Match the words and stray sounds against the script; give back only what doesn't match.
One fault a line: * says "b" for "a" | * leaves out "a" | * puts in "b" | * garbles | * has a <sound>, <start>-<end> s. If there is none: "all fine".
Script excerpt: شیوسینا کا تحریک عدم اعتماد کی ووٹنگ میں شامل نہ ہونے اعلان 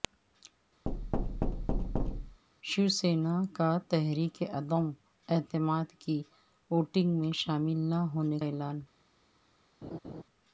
* has a thud, 0.9-2.4 s
* has a laugh, 9.8-10.2 s